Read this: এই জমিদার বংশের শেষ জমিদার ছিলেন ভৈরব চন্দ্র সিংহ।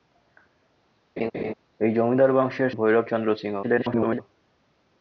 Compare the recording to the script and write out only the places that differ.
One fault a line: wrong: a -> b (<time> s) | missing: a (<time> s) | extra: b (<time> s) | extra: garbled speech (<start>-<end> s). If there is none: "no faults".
missing: শেষ জমিদার ছিলেন (2.7 s)
extra: garbled speech (3.6-4.2 s)